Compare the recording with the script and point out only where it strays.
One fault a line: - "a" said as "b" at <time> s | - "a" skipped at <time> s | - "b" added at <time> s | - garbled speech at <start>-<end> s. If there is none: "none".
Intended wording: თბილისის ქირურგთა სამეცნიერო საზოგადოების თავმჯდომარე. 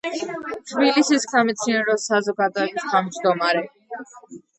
- "ქირურგთა" skipped at 1.3 s